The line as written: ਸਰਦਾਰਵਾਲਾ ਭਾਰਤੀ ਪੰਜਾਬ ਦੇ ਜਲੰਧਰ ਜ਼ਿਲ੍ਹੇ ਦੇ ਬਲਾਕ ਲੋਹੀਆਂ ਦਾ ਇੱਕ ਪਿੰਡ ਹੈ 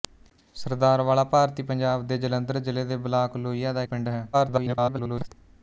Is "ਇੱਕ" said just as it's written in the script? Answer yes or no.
no